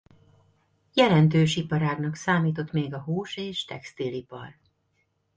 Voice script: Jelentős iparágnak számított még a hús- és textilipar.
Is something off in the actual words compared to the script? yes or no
no